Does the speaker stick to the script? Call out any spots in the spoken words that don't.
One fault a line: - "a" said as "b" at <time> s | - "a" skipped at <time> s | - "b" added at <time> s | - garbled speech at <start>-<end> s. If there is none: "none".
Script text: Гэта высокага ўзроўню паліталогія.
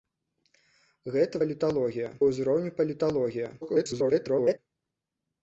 - "высокага" said as "паліталогія" at 1.4 s
- garbled speech at 3.6-4.6 s